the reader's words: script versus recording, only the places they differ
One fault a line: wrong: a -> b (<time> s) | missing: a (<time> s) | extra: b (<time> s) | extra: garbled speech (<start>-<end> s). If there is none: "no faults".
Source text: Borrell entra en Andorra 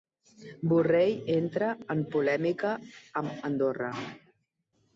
extra: polèmica amb (2.1 s)